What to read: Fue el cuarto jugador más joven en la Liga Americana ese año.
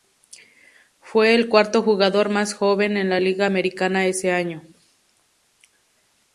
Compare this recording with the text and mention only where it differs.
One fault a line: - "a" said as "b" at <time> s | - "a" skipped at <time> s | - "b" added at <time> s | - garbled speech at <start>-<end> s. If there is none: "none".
none